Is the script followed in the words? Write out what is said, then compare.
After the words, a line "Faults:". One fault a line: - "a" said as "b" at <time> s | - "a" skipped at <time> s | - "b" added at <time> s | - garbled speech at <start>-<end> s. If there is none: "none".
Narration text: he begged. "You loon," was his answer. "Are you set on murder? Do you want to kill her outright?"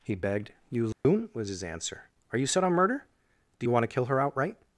he begged. "You loon," was his answer. "Are you set on murder? Do you want to kill her outright?"
Faults:
none